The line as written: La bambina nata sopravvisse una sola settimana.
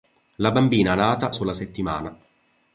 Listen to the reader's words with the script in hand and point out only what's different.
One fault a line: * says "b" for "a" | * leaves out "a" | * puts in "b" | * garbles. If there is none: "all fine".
* leaves out "sopravvisse una"